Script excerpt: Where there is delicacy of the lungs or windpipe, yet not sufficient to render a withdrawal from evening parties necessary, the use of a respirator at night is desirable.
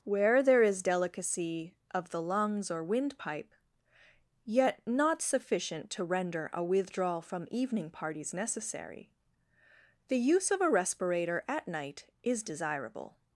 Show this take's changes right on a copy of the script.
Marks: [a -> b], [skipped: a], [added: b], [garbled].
Where there is delicacy of the lungs or windpipe, yet not sufficient to render a withdrawal from evening parties necessary, the use of a respirator at night is desirable.